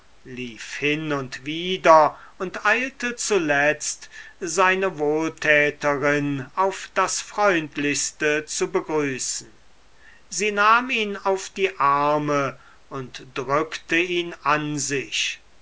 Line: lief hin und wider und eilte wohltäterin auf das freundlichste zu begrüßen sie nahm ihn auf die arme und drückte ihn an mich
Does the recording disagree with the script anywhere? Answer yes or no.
yes